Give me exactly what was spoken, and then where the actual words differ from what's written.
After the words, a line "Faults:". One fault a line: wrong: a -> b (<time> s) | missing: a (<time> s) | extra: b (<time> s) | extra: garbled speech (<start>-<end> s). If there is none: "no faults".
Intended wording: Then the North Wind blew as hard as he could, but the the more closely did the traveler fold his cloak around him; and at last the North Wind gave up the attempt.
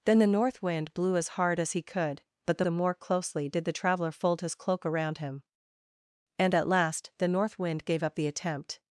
Then the North Wind blew as hard as he could, but the the more closely did the traveler fold his cloak around him; and at last the North Wind gave up the attempt.
Faults:
no faults